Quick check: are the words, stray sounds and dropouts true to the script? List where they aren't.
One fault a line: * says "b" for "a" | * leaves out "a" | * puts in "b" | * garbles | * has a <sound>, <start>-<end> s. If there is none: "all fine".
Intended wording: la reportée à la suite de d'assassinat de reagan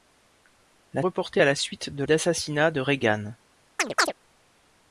* has a chirp, 3.8-4.1 s